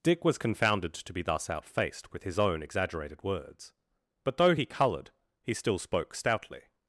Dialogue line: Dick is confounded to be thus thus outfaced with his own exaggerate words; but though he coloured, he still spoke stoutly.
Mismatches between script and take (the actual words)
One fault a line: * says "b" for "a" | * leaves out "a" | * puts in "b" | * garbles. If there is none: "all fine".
* says "was" for "is"
* leaves out "thus"
* says "exaggerated" for "exaggerate"